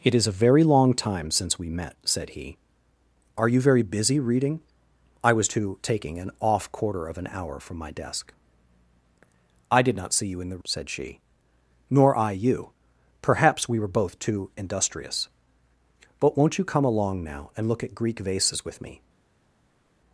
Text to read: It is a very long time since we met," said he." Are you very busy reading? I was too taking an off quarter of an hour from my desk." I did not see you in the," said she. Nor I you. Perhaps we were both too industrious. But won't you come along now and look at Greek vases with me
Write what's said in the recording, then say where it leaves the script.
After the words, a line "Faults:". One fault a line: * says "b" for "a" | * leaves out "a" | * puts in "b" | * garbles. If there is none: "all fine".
It is a very long time since we met," said he." Are you very busy reading? I was too taking an off quarter of an hour from my desk." I did not see you in the," said she. Nor I you. Perhaps we were both too industrious. But won't you come along now and look at Greek vases with me
Faults:
all fine